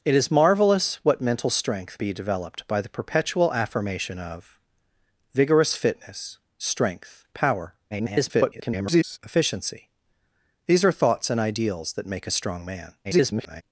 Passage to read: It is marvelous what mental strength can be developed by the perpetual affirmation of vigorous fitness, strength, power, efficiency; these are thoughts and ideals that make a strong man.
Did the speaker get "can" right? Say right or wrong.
wrong